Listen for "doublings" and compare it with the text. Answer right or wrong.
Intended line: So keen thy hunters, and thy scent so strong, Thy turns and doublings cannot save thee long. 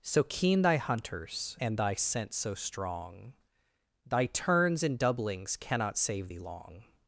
right